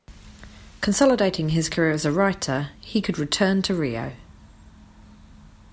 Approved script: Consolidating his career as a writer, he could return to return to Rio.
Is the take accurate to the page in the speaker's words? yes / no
no